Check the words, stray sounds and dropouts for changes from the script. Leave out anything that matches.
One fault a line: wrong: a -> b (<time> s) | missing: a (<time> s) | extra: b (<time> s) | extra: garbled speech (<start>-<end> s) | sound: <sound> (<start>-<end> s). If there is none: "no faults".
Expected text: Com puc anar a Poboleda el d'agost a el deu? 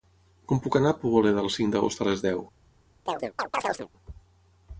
extra: cinc (1.6 s)
wrong: el -> les (2.1 s)
sound: chirp (3.1-3.9 s)